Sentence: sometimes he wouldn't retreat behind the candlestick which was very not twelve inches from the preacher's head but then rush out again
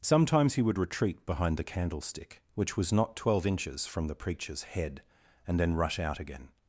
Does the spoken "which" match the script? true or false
true